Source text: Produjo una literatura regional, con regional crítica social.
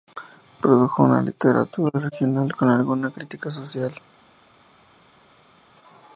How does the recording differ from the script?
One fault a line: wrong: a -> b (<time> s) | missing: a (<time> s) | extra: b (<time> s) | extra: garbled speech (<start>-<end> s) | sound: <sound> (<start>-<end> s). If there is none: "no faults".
wrong: regional -> alguna (2.7 s)